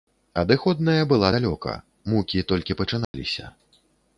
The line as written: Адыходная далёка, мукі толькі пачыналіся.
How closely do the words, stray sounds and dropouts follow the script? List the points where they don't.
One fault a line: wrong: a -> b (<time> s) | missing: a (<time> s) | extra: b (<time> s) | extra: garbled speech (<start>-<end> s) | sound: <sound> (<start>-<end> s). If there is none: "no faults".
extra: была (1.1 s)
sound: dropout (3.0-3.1 s)